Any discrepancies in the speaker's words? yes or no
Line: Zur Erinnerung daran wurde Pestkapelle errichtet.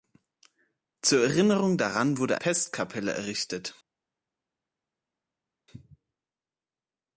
no